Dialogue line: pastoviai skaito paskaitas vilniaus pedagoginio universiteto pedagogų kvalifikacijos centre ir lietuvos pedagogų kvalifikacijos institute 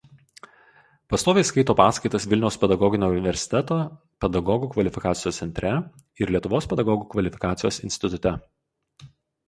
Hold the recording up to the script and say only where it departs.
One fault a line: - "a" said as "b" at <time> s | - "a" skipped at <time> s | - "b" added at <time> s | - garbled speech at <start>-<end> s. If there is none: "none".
none